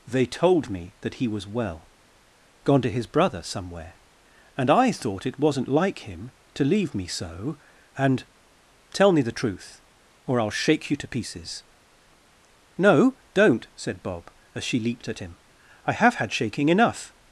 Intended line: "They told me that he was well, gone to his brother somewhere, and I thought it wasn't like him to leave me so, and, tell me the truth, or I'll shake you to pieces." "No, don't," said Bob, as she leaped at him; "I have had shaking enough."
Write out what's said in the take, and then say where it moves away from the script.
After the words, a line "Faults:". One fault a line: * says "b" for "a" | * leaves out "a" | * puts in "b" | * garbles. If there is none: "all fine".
"They told me that he was well, gone to his brother somewhere, and I thought it wasn't like him to leave me so, and, tell me the truth, or I'll shake you to pieces." "No, don't," said Bob, as she leaped at him; "I have had shaking enough."
Faults:
all fine